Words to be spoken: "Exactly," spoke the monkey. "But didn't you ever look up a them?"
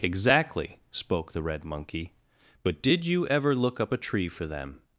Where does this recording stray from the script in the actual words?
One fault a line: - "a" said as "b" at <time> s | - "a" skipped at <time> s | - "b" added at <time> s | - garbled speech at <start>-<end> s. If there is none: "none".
- "red" added at 1.4 s
- "didn't" said as "did" at 2.8 s
- "tree for" added at 4.0 s